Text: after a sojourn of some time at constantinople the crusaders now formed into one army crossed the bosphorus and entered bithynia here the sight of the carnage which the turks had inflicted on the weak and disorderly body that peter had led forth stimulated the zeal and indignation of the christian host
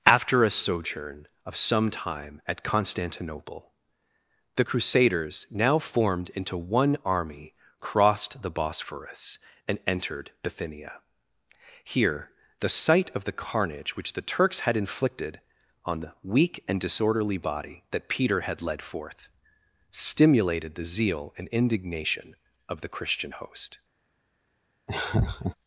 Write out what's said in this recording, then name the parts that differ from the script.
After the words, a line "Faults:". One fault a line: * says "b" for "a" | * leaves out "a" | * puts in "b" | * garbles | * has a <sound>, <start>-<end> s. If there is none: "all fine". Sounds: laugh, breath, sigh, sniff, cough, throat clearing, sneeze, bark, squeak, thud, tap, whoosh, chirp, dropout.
after a sojourn of some time at constantinople the crusaders now formed into one army crossed the bosphorus and entered bithynia here the sight of the carnage which the turks had inflicted on the weak and disorderly body that peter had led forth stimulated the zeal and indignation of the christian host
Faults:
* has a laugh, 24.9-25.6 s